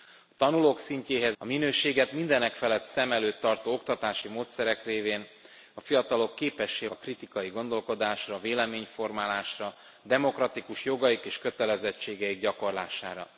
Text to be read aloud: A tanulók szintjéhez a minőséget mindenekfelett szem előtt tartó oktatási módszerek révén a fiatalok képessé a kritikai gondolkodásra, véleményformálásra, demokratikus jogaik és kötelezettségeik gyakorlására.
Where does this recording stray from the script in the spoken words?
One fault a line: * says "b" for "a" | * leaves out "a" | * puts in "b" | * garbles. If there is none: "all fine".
all fine